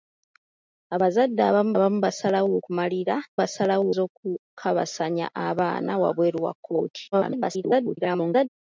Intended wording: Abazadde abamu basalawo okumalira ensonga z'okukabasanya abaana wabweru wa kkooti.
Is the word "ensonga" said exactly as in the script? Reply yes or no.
no